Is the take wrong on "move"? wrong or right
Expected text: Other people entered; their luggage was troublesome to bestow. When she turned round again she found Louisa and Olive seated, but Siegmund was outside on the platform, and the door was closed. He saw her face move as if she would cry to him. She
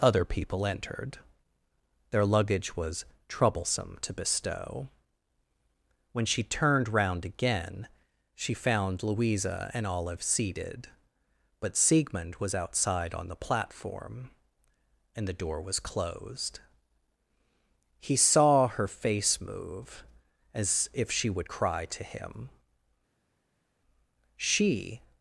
right